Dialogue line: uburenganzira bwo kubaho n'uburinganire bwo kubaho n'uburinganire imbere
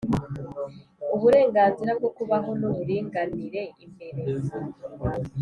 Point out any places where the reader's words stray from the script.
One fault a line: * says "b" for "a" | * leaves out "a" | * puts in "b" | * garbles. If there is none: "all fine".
* leaves out "bwo kubaho n'uburinganire"